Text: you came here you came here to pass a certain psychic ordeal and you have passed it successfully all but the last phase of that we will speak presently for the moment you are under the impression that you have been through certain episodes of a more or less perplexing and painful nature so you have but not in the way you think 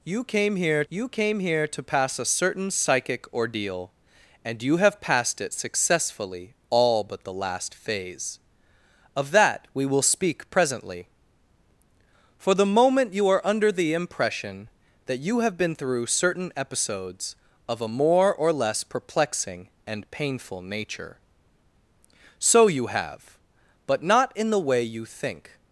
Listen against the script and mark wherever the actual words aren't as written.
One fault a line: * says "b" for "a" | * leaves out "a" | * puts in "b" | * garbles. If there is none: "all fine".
all fine